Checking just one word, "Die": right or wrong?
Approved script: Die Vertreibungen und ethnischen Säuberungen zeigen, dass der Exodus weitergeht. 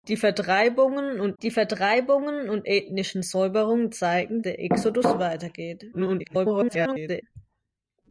right